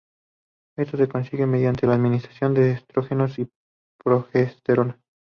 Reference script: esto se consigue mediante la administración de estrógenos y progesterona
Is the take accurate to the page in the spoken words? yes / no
yes